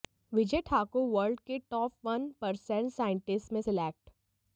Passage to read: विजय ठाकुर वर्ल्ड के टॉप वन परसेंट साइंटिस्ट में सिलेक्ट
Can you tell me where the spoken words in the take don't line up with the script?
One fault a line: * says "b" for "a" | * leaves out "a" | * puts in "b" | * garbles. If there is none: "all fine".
all fine